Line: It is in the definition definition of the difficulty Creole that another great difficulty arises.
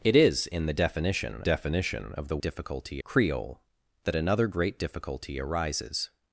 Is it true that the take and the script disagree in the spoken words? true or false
false